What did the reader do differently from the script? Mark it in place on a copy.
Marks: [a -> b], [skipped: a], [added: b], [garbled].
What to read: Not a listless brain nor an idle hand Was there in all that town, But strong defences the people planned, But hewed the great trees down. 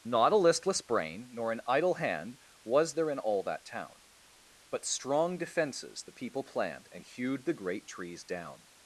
Not a listless brain nor an idle hand Was there in all that town, But strong defences the people planned, [But -> And] hewed the great trees down.